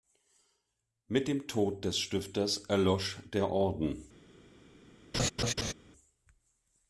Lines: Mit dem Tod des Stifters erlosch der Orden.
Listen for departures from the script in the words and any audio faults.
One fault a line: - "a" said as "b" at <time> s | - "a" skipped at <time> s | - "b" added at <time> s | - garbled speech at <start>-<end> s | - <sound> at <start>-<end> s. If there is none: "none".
- laugh at 5.1-5.7 s